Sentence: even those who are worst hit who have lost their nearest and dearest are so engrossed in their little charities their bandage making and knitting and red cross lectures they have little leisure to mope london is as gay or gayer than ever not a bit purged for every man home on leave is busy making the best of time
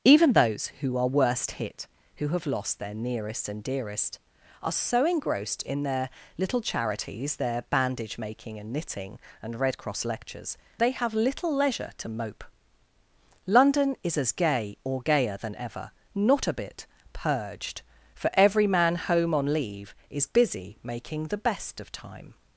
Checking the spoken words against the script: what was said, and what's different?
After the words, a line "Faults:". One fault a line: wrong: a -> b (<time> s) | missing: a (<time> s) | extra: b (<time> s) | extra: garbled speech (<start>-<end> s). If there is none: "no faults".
even those who are worst hit who have lost their nearest and dearest are so engrossed in their little charities their bandage making and knitting and red cross lectures they have little leisure to mope london is as gay or gayer than ever not a bit purged for every man home on leave is busy making the best of time
Faults:
no faults